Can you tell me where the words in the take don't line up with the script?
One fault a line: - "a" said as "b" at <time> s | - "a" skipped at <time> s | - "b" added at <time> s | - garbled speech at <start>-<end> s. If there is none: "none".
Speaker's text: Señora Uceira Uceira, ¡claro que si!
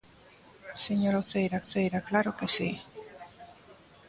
none